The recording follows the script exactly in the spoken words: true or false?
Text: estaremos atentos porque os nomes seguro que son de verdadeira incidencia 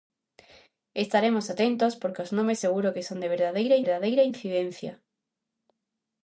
false